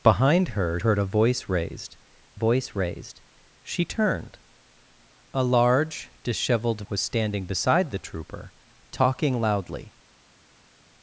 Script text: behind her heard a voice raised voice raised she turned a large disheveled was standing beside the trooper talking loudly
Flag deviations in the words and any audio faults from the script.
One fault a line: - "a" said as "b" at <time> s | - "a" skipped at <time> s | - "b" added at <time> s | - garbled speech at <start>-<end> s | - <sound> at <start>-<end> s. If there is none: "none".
none